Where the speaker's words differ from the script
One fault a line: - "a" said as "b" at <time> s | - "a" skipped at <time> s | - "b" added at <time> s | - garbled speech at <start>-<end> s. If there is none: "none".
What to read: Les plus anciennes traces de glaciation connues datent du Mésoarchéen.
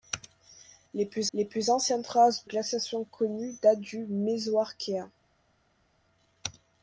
- "les plus" added at 1.3 s
- "de" skipped at 2.5 s